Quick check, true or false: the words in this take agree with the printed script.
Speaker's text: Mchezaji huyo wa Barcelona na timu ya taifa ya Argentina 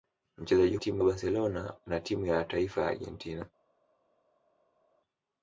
false